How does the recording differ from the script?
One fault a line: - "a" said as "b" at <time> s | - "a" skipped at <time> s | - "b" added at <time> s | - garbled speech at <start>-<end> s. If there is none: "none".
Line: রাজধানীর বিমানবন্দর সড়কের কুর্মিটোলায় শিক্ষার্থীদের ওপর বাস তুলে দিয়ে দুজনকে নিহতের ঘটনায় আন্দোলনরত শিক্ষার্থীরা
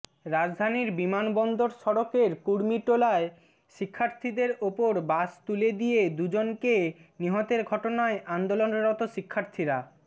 none